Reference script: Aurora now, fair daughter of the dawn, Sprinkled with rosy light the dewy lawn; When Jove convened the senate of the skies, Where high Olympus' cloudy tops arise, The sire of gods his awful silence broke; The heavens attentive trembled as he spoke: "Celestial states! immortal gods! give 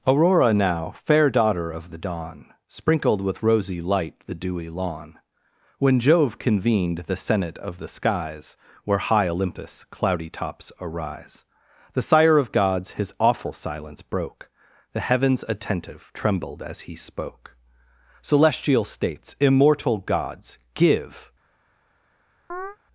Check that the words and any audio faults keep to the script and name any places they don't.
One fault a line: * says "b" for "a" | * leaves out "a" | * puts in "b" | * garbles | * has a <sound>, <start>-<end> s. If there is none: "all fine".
* has a chirp, 22.5-22.8 s